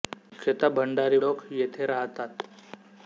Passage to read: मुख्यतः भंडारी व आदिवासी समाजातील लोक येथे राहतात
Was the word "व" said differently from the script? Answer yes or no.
yes